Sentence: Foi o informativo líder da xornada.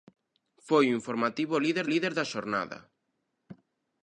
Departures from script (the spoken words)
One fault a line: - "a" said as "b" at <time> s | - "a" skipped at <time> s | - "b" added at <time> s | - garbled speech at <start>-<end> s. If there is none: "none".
- "líder" added at 1.9 s